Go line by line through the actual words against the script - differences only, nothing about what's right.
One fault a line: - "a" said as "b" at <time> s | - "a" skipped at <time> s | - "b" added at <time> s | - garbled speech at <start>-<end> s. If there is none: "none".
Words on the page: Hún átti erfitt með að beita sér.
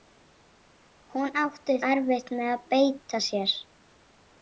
none